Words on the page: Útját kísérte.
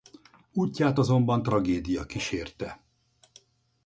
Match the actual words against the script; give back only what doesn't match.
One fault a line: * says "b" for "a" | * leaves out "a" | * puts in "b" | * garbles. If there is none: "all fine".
* puts in "azonban tragédia"